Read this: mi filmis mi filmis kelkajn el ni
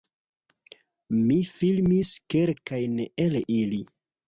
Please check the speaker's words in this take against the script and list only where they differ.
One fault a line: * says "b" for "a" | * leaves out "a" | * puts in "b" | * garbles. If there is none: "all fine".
* leaves out "mi filmis"
* says "ili" for "ni"